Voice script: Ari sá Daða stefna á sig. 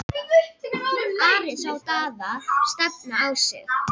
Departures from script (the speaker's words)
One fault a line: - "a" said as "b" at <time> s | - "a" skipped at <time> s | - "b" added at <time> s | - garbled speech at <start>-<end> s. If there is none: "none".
none